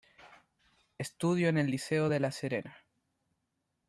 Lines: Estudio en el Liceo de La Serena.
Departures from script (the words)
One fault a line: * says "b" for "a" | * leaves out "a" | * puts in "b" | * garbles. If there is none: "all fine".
all fine